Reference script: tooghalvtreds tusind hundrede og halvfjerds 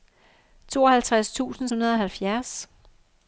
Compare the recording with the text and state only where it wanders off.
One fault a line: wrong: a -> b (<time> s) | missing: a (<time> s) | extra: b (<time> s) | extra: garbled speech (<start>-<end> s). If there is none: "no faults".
no faults